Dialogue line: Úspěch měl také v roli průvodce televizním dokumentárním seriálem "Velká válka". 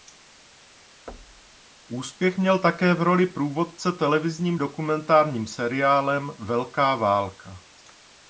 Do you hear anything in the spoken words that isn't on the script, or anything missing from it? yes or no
no